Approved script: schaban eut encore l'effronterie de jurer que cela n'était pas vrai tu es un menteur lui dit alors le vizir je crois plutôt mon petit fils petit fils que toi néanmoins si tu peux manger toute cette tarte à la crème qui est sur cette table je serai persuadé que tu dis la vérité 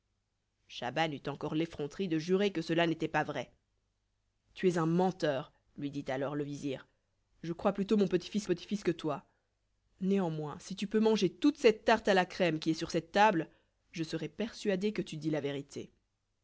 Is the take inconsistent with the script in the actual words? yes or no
no